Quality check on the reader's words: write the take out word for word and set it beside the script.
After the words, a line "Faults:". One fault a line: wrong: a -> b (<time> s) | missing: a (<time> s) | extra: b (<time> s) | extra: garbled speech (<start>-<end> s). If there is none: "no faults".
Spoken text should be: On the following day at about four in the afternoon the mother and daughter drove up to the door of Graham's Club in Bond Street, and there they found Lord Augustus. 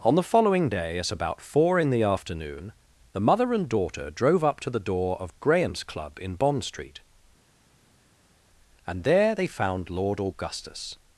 On the following day at about four in the afternoon the mother and daughter drove up to the door of Graham's Club in Bond Street, and there they found Lord Augustus.
Faults:
no faults